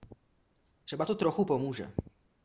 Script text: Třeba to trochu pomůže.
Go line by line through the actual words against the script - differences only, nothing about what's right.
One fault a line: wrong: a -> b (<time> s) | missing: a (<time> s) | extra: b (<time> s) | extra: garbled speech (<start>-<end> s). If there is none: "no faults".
no faults